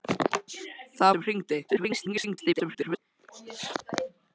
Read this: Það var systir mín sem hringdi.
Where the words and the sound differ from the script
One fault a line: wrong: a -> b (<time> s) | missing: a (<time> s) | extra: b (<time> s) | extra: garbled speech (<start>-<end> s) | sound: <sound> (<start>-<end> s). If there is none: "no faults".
missing: var systir mín (1.1 s)
extra: garbled speech (1.7-3.0 s)